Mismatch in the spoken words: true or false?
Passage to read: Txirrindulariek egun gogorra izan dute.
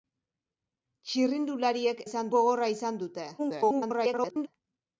true